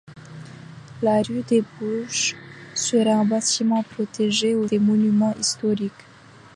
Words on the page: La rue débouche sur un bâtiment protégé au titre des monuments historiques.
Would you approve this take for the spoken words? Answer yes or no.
no